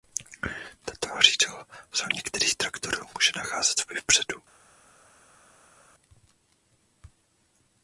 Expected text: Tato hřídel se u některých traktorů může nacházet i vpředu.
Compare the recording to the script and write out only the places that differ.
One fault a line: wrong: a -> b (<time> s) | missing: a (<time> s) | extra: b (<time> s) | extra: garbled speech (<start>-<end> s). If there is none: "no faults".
no faults